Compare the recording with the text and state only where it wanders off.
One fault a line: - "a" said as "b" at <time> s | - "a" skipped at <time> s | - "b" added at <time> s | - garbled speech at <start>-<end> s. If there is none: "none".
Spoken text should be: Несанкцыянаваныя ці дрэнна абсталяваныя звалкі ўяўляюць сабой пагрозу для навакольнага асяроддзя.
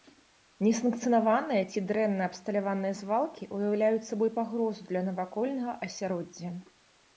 none